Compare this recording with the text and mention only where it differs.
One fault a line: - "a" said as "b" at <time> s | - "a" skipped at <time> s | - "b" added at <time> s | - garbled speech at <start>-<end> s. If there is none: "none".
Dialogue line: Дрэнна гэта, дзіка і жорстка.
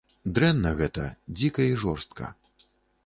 none